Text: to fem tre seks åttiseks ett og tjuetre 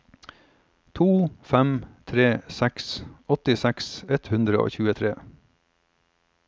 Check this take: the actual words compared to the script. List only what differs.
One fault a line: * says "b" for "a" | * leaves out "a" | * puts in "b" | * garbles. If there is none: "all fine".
* puts in "hundre"